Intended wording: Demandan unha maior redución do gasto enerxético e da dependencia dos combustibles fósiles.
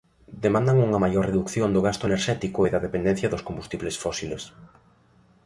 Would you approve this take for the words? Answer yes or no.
yes